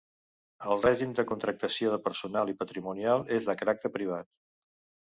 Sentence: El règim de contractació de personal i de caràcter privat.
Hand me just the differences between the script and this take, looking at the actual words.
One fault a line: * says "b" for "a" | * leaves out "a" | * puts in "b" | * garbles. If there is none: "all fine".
* puts in "patrimonial és"